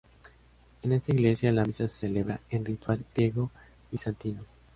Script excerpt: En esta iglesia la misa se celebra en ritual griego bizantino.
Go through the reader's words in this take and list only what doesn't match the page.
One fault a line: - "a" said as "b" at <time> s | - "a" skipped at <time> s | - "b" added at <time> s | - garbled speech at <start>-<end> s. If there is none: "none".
none